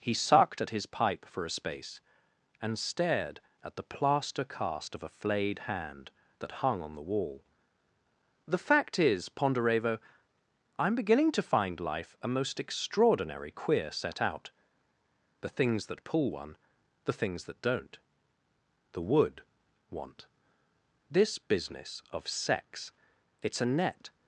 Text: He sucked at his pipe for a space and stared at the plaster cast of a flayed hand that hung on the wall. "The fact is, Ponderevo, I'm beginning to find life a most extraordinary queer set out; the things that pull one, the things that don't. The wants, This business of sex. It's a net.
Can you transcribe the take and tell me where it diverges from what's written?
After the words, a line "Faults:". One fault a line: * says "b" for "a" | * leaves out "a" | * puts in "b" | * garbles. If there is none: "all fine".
He sucked at his pipe for a space and stared at the plaster cast of a flayed hand that hung on the wall. "The fact is, Ponderevo, I'm beginning to find life a most extraordinary queer set out; the things that pull one, the things that don't. The wood want, This business of sex. It's a net.
Faults:
* says "wood want" for "wants"